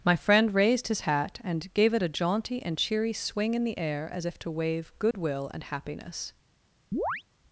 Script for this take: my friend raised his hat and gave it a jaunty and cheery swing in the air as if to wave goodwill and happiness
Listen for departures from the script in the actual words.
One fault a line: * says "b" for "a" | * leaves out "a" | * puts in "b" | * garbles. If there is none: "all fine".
all fine